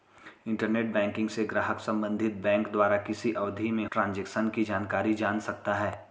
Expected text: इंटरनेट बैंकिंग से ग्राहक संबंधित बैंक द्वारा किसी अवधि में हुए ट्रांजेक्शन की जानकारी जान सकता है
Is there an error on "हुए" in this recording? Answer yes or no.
yes